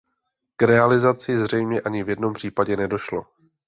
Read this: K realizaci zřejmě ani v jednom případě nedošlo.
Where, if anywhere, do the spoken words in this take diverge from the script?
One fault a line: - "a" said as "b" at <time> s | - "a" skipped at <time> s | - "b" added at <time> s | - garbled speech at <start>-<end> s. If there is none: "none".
none